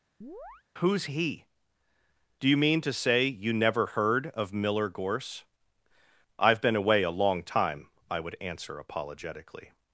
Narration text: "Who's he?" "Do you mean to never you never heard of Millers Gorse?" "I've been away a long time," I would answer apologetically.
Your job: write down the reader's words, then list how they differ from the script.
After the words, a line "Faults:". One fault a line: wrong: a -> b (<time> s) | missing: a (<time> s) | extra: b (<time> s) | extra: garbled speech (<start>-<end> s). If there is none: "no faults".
"Who's he?" "Do you mean to say you never heard of Miller Gorse?" "I've been away a long time," I would answer apologetically.
Faults:
wrong: never -> say (2.9 s)
wrong: Millers -> Miller (4.5 s)